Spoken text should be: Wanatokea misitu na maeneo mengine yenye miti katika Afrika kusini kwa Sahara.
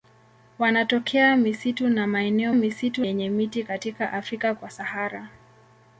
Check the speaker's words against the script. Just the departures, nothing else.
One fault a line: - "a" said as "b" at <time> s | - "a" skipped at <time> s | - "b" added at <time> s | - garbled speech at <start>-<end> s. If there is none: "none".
- "mengine" said as "misitu" at 2.5 s
- "kusini" skipped at 4.5 s